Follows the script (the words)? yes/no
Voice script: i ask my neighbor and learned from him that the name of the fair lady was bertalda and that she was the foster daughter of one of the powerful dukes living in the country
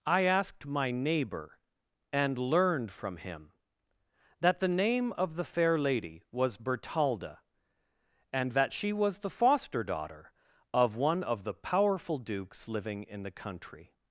no